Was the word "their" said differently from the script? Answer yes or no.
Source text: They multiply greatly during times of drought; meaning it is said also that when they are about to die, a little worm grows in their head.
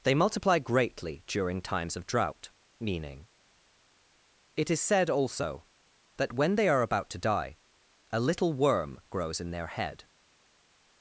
no